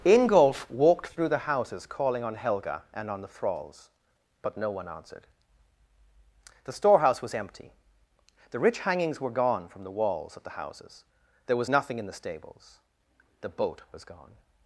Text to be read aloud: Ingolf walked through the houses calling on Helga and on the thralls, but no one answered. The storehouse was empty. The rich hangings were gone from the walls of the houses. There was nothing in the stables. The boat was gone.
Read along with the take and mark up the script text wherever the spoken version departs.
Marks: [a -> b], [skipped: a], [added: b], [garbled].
Ingolf walked through the houses calling on Helga and on the thralls, but no one answered. The storehouse was empty. The rich hangings were gone from the walls of the houses. There was nothing in the stables. The boat was gone.